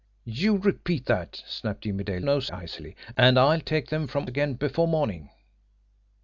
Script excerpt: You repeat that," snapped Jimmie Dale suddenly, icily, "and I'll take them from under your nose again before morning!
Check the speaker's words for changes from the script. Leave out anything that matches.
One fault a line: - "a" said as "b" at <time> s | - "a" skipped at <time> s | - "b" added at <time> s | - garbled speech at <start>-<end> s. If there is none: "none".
- "suddenly" said as "nose" at 2.2 s
- "under your nose" skipped at 4.3 s